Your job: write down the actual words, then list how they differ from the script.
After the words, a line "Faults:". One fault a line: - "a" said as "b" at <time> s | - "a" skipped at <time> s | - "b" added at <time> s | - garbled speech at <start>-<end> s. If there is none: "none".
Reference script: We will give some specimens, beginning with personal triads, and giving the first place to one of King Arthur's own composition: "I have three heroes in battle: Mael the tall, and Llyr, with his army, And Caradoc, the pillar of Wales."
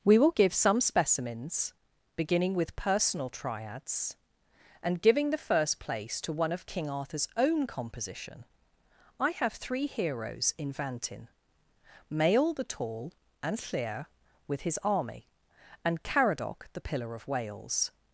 We will give some specimens, beginning with personal triads, and giving the first place to one of King Arthur's own composition: "I have three heroes in vantin: Mael the tall, and Llyr, with his army, And Caradoc, the pillar of Wales."
Faults:
- "battle" said as "vantin" at 10.7 s